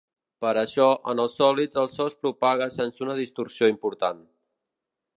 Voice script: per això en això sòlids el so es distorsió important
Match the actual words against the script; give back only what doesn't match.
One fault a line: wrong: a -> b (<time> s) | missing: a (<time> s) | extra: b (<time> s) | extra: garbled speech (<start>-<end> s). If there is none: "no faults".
wrong: això -> els (1.2 s)
extra: propaga sense una (2.2 s)